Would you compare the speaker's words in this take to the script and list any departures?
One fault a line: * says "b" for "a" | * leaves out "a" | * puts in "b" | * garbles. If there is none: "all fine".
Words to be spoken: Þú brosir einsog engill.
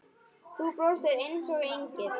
all fine